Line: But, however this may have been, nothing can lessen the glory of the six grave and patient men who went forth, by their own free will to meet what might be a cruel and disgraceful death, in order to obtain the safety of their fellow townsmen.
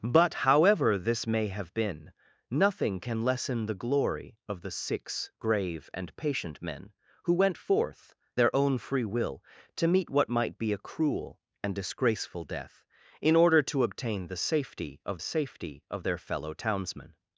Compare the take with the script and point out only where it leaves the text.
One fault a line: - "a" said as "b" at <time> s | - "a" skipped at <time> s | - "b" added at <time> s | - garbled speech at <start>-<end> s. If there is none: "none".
- "by" skipped at 8.2 s
- "safety of" added at 15.2 s